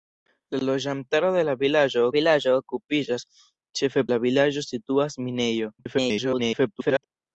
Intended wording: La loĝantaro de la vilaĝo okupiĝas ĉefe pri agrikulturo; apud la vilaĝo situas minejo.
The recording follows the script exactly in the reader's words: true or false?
false